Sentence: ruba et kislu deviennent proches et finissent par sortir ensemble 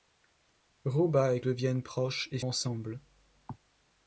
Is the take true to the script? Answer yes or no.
no